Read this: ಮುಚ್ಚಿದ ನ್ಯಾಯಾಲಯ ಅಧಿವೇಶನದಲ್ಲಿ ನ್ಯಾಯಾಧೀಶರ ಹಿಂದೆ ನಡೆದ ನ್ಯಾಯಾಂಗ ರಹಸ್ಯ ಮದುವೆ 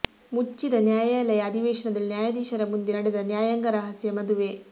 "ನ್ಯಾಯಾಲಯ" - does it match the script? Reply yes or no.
yes